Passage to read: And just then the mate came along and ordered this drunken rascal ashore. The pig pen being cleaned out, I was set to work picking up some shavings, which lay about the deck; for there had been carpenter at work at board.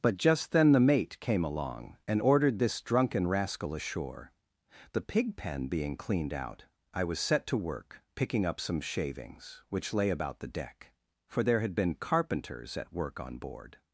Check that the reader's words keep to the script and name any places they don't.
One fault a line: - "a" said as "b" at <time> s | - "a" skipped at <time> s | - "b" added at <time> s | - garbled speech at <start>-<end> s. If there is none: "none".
- "And" said as "But" at 0.0 s
- "carpenter" said as "carpenters" at 12.0 s
- "at" said as "on" at 13.2 s